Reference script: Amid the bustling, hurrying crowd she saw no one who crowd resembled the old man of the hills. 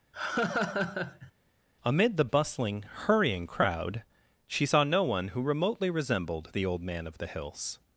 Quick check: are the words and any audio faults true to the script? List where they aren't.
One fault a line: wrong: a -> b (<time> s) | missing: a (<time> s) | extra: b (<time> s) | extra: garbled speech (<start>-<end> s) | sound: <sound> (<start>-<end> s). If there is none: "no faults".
sound: laugh (0.1-1.3 s)
wrong: crowd -> remotely (5.4 s)